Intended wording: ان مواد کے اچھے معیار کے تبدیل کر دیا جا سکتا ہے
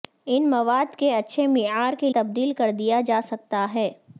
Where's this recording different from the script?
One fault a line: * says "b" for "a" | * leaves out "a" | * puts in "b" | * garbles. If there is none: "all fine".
all fine